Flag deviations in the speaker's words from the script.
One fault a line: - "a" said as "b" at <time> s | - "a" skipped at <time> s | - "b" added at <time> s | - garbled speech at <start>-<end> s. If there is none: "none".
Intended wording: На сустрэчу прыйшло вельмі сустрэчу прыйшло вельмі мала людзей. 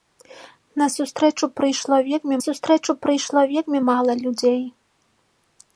none